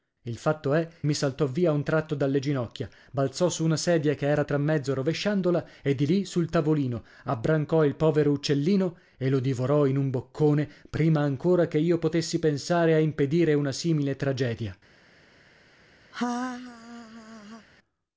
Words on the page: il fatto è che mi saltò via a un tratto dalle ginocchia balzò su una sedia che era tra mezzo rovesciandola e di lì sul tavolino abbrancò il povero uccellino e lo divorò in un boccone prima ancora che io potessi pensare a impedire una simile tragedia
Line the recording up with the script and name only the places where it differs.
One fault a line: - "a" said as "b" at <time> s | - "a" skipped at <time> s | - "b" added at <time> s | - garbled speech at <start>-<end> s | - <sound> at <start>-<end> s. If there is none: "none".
- "che" skipped at 0.9 s
- laugh at 16.1-17.7 s